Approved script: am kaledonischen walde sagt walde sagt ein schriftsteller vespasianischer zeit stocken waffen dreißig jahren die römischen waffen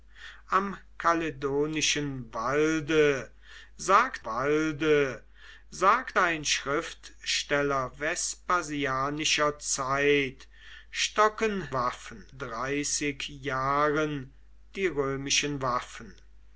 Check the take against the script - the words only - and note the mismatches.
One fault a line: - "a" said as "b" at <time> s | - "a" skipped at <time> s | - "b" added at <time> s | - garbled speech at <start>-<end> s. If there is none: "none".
none